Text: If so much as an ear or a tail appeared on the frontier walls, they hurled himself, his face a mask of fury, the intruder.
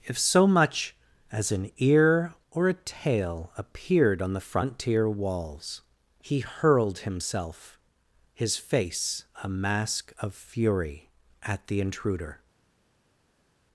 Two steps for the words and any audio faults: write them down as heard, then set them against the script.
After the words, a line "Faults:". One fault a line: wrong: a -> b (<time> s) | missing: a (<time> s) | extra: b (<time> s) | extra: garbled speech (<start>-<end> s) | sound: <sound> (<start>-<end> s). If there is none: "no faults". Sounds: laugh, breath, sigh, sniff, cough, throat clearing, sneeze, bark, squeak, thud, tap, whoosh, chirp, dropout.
If so much as an ear or a tail appeared on the frontier walls, he hurled himself, his face a mask of fury, at the intruder.
Faults:
wrong: they -> he (6.2 s)
extra: at (11.4 s)